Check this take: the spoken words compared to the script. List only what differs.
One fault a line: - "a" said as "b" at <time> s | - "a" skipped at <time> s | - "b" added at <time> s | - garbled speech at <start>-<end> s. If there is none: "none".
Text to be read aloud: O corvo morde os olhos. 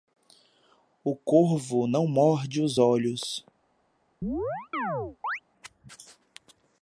- "não" added at 1.9 s